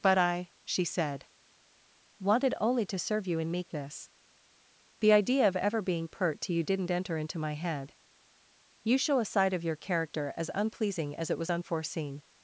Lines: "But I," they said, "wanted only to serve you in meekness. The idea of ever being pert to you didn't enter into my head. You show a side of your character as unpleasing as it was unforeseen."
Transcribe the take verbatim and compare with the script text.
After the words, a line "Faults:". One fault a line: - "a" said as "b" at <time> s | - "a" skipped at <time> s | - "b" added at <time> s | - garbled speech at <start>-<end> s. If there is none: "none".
"But I," she said, "wanted only to serve you in meekness. The idea of ever being pert to you didn't enter into my head. You show a side of your character as unpleasing as it was unforeseen."
Faults:
- "they" said as "she" at 0.6 s